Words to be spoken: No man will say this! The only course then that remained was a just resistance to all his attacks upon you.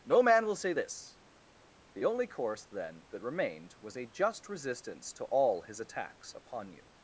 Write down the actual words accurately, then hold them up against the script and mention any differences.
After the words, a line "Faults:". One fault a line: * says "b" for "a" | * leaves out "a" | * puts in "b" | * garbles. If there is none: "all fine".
No man will say this! The only course then that remained was a just resistance to all his attacks upon you.
Faults:
all fine